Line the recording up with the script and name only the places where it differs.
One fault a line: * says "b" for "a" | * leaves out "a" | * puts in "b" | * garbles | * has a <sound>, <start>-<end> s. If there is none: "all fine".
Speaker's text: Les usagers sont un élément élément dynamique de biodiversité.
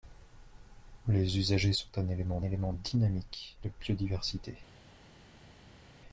all fine